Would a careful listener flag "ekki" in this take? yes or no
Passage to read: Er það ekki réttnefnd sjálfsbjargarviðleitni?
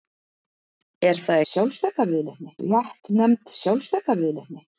yes